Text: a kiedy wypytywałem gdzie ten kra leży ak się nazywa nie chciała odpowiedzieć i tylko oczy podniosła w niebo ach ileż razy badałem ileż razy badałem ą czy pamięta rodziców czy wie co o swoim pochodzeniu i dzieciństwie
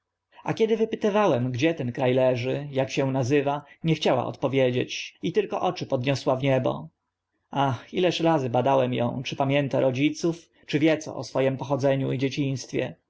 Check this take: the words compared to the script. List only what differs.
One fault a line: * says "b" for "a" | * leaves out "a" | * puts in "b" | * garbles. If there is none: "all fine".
* leaves out "ileż razy badałem"